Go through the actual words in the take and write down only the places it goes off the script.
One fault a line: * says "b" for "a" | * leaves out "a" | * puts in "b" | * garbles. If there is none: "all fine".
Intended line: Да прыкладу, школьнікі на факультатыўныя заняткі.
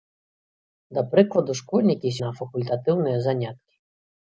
all fine